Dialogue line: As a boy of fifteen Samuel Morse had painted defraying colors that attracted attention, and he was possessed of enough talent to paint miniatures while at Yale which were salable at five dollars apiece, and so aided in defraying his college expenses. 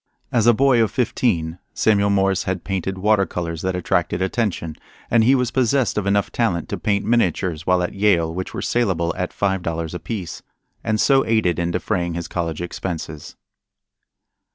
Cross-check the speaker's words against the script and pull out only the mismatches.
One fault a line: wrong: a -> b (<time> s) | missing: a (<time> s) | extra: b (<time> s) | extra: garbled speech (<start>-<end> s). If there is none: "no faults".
wrong: defraying -> water (3.0 s)